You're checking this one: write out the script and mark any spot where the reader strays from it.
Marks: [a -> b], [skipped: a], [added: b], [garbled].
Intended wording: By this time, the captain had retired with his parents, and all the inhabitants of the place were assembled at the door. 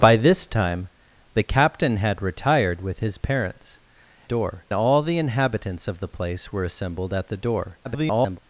By this time, the captain had retired with his parents, [and -> door] all the inhabitants of the place were assembled at the door. [garbled]